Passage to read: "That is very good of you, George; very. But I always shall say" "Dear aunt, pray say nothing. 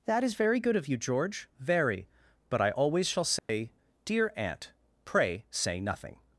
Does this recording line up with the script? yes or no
yes